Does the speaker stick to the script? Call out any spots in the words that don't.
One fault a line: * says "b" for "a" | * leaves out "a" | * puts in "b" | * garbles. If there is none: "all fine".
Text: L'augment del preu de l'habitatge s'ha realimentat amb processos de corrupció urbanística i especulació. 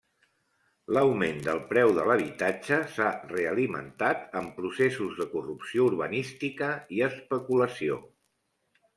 all fine